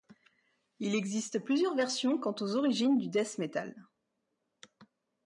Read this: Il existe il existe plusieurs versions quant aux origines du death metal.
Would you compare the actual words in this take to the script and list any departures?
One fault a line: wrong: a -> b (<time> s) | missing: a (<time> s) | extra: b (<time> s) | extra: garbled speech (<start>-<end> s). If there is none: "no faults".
missing: il existe (1.4 s)